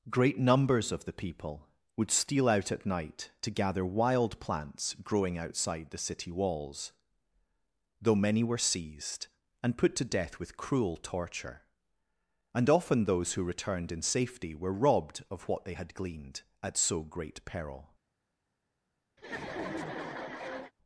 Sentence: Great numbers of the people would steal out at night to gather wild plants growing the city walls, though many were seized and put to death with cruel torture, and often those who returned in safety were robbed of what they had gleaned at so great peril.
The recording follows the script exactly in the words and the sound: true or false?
false